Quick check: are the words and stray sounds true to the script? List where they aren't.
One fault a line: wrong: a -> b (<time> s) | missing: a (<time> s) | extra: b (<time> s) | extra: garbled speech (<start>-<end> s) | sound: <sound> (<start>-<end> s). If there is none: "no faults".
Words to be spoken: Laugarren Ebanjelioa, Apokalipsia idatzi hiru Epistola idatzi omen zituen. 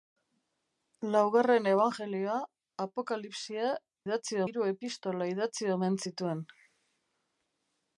no faults